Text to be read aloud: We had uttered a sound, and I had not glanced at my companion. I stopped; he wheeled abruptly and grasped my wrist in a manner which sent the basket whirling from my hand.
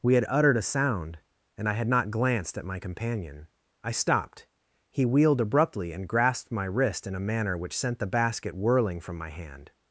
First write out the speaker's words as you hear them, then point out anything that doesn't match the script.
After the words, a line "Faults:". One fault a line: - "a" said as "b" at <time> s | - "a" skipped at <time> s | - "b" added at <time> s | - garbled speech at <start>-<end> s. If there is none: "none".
We had uttered a sound, and I had not glanced at my companion. I stopped; he wheeled abruptly and grasped my wrist in a manner which sent the basket whirling from my hand.
Faults:
none